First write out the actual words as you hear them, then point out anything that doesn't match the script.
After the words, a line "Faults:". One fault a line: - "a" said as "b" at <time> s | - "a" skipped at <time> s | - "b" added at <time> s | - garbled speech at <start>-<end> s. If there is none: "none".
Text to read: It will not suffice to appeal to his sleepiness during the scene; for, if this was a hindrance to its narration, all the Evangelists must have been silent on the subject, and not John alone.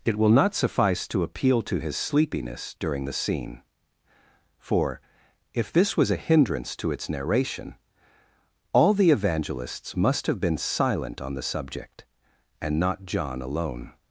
It will not suffice to appeal to his sleepiness during the scene; for, if this was a hindrance to its narration, all the Evangelists must have been silent on the subject, and not John alone.
Faults:
none